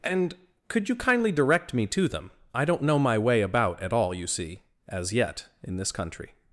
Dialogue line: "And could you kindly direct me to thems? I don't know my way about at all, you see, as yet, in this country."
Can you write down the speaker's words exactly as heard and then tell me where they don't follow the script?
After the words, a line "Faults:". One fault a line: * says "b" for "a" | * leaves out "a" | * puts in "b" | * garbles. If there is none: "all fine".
"And could you kindly direct me to them? I don't know my way about at all, you see, as yet, in this country."
Faults:
* says "them" for "thems"